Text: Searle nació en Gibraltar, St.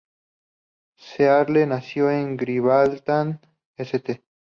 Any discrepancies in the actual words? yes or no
no